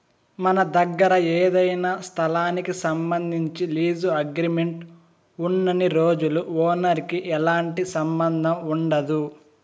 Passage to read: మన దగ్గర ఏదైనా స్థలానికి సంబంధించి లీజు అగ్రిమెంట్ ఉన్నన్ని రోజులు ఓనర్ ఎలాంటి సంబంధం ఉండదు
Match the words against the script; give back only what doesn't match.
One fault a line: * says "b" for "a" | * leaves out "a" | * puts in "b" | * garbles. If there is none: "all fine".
* puts in "కి"